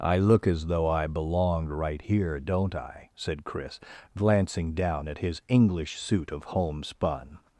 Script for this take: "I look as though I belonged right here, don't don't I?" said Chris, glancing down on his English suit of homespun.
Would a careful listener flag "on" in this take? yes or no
yes